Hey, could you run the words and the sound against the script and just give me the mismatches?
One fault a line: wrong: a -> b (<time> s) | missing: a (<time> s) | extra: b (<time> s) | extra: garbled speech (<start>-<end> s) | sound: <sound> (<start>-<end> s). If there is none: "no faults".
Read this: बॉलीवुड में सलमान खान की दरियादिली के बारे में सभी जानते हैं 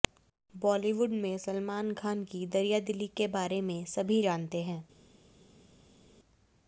no faults